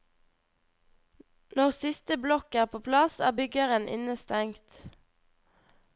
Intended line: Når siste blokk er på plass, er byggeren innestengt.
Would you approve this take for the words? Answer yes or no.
yes